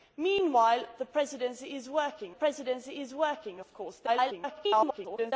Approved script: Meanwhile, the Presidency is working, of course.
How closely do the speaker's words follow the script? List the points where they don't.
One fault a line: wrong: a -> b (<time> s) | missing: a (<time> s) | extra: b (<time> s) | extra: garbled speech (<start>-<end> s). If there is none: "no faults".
extra: Presidency is working (2.3 s)
extra: garbled speech (4.1-5.3 s)